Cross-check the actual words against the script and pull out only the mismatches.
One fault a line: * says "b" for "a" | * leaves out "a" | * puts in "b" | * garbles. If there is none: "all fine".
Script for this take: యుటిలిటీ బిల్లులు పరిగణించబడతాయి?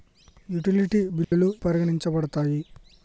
all fine